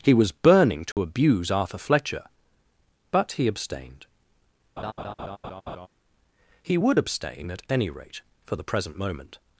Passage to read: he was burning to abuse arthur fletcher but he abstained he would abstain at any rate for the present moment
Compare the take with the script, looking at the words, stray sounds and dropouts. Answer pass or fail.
fail